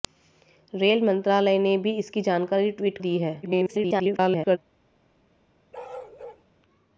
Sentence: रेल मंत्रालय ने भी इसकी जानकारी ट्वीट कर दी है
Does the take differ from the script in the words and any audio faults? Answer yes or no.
yes